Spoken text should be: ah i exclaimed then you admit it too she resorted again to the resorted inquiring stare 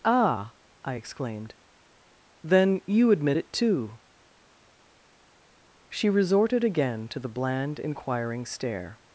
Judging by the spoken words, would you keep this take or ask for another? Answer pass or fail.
fail